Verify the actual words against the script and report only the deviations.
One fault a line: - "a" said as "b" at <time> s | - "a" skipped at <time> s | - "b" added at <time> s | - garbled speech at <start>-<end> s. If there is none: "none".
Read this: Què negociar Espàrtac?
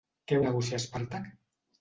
none